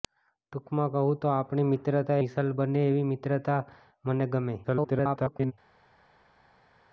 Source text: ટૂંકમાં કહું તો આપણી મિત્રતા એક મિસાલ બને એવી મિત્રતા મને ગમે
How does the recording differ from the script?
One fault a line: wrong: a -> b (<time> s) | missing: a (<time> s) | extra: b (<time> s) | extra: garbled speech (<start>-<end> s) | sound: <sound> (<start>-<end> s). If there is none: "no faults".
missing: એક (2.2 s)
extra: garbled speech (4.6-5.5 s)